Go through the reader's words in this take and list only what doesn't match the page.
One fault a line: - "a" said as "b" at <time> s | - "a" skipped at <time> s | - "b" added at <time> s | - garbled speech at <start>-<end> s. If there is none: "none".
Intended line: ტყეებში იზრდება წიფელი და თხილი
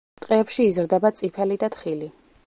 none